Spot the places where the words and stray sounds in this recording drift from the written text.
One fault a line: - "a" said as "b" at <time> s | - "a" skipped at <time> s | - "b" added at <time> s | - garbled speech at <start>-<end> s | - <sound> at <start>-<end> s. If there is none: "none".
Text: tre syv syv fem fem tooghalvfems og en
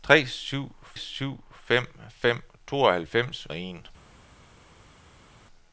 none